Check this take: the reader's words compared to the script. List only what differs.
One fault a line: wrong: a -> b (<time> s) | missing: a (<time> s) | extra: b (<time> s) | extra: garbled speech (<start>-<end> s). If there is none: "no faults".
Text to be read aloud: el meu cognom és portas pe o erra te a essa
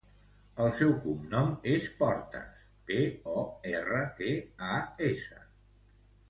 wrong: meu -> seu (0.8 s)